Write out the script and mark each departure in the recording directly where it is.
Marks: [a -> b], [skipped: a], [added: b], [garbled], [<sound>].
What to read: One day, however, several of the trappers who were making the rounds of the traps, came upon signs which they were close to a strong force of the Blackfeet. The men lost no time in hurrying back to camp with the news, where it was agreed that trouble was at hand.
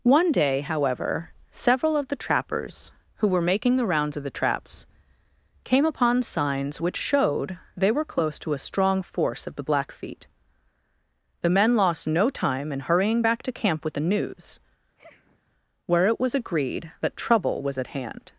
One day, however, several of the trappers who were making the rounds of the traps, came upon signs which [added: showed] they were close to a strong force of the Blackfeet. The men lost no time in hurrying back to camp with the news, [sniff] where it was agreed that trouble was at hand.